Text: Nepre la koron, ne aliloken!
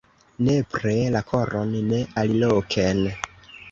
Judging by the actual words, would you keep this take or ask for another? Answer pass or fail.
pass